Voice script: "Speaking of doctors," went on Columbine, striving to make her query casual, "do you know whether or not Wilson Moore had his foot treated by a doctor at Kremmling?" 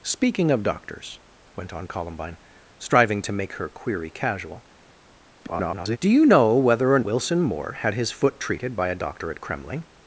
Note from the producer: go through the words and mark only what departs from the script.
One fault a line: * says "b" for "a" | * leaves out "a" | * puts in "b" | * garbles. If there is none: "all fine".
* garbles
* leaves out "not"